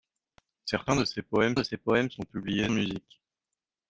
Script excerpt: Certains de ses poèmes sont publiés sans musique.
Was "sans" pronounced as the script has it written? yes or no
no